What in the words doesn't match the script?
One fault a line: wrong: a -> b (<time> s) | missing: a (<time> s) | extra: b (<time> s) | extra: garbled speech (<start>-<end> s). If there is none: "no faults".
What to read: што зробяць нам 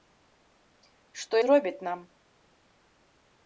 no faults